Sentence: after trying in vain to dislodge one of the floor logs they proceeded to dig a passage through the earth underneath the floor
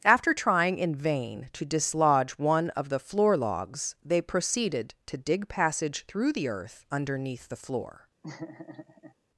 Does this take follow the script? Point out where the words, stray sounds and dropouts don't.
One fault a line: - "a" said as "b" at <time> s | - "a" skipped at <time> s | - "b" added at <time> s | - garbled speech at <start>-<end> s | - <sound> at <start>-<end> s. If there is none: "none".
- "a" skipped at 5.5 s
- laugh at 8.2-9.1 s